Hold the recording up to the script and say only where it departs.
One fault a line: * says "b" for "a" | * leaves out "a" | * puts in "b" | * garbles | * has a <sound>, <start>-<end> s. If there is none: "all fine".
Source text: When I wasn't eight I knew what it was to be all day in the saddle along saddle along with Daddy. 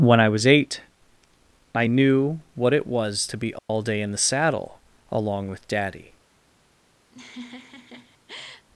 * says "was" for "wasn't"
* has a dropout, 3.6-3.7 s
* leaves out "saddle along"
* has a laugh, 7.1-8.7 s